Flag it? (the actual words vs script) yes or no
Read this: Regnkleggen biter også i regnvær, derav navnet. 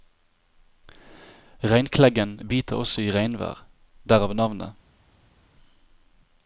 no